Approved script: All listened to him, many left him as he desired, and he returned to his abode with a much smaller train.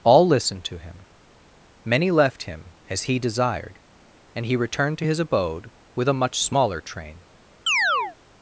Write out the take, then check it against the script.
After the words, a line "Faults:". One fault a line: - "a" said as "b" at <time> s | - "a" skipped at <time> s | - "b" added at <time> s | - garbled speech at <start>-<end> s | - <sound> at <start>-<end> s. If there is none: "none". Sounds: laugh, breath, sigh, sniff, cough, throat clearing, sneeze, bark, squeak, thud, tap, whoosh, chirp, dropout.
All listened to him, many left him as he desired, and he returned to his abode with a much smaller train.
Faults:
- chirp at 7.7-8.2 s